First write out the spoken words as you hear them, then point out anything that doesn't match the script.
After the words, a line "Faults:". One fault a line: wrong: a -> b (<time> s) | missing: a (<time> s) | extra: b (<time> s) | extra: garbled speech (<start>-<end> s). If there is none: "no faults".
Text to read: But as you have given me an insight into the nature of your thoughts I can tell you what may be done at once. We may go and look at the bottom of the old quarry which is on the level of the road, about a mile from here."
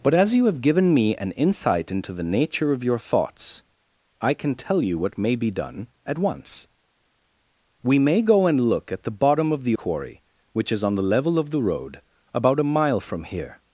But as you have given me an insight into the nature of your thoughts I can tell you what may be done at once. We may go and look at the bottom of the quarry which is on the level of the road, about a mile from here."
Faults:
missing: old (9.8 s)